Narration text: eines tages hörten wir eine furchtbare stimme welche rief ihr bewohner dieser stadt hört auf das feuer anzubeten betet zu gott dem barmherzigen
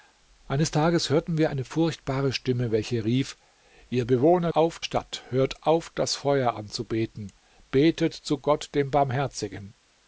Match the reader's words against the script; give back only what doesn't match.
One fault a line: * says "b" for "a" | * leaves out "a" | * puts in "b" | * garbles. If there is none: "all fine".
* says "auf" for "dieser"